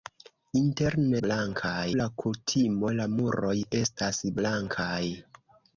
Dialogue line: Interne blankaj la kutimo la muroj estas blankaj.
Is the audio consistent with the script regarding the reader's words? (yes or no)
yes